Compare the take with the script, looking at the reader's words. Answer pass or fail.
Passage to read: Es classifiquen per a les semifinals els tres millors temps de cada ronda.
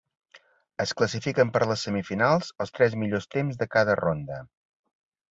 pass